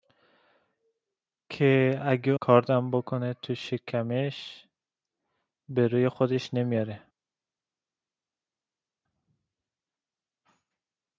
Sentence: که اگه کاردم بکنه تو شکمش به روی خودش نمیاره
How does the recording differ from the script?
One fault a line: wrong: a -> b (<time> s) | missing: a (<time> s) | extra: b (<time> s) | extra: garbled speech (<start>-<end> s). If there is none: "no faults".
no faults